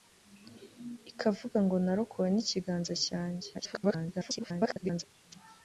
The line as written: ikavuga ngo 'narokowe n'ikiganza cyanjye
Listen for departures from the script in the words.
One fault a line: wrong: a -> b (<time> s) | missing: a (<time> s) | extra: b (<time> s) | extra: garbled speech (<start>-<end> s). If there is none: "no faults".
extra: garbled speech (3.5-5.0 s)